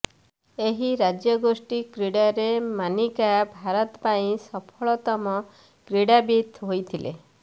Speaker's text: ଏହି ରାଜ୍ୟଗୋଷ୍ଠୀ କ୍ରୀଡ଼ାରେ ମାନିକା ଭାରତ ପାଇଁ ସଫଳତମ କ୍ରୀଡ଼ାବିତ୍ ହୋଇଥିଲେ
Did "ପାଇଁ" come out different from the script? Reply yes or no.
no